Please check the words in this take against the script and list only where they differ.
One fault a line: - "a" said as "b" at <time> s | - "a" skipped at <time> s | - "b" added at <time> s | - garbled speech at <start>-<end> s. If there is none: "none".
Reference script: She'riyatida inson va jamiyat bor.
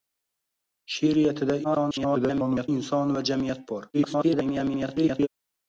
- garbled speech at 1.6-2.7 s
- garbled speech at 3.9-5.3 s